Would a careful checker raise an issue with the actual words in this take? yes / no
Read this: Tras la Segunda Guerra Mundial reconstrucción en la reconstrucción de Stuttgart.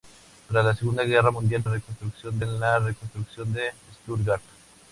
no